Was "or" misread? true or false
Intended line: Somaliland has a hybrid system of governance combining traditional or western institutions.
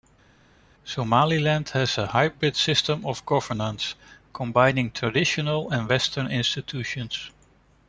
true